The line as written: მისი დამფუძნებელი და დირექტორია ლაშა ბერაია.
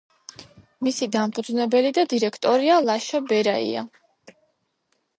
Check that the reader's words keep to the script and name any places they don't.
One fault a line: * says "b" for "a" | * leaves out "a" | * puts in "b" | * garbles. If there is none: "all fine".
all fine